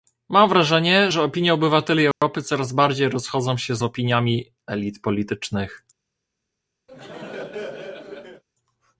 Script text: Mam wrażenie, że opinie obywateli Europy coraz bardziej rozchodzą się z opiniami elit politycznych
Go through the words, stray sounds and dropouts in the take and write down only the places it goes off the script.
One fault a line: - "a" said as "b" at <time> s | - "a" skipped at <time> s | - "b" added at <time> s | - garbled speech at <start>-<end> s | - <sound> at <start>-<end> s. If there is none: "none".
- dropout at 2.1-2.2 s
- laugh at 6.9-8.4 s